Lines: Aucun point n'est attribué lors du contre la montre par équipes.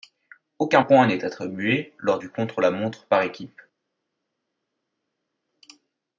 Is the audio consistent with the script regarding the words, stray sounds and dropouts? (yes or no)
yes